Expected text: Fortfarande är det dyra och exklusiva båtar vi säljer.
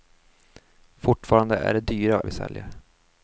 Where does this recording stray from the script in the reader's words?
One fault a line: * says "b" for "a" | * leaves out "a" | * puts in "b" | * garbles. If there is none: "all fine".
* leaves out "exklusiva båtar"